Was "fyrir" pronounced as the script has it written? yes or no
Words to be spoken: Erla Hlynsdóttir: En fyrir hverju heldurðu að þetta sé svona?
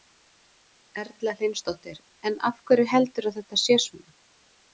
no